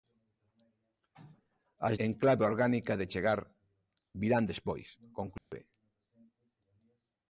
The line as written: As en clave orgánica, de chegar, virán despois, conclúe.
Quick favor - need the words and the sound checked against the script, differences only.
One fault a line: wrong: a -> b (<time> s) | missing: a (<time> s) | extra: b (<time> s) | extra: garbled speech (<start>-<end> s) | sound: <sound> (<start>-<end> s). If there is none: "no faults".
sound: dropout (5.4-5.5 s)